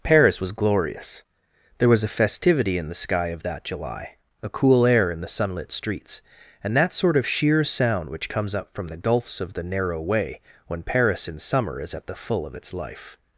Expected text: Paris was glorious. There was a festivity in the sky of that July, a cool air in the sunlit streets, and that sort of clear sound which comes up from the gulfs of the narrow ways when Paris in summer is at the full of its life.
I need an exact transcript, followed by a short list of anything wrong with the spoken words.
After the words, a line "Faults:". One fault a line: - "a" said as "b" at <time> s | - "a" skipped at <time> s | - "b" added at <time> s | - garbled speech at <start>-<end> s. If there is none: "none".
Paris was glorious. There was a festivity in the sky of that July, a cool air in the sunlit streets, and that sort of sheer sound which comes up from the gulfs of the narrow way when Paris in summer is at the full of its life.
Faults:
- "clear" said as "sheer" at 7.2 s
- "ways" said as "way" at 10.0 s